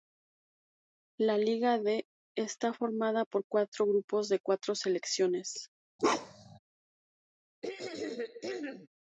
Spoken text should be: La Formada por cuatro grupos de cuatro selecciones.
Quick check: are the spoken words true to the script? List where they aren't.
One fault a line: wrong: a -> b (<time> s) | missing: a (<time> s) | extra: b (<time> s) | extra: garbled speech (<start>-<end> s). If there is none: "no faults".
extra: Liga D está (1.4 s)